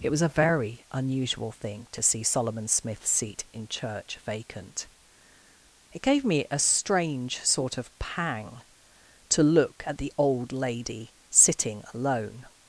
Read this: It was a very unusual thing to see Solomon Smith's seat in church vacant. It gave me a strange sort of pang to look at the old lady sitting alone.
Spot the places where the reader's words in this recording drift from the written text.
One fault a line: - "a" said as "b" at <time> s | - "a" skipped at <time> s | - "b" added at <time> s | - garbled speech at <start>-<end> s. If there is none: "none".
none